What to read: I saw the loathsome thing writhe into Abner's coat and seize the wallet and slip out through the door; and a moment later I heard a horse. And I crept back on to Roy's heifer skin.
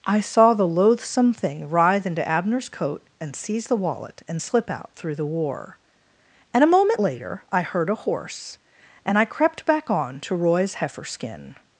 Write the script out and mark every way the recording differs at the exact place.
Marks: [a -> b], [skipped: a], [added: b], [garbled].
I saw the loathsome thing writhe into Abner's coat and seize the wallet and slip out through the [door; -> war] and a moment later I heard a horse. And I crept back on to Roy's heifer skin.